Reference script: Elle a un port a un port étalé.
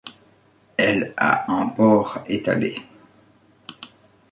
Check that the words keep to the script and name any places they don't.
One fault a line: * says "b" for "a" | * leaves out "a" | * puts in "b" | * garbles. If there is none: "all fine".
* leaves out "a un port"